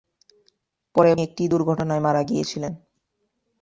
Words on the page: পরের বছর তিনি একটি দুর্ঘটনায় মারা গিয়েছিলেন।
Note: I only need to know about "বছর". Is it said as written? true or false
false